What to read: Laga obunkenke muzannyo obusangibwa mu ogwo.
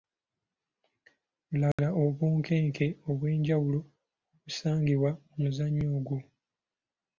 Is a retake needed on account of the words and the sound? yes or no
yes